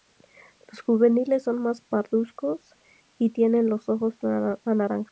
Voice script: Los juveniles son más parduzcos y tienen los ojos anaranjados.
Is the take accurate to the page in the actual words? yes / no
yes